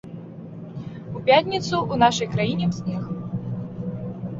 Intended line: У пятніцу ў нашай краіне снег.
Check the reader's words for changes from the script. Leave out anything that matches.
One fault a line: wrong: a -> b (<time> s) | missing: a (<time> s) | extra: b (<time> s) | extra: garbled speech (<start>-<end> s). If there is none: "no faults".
no faults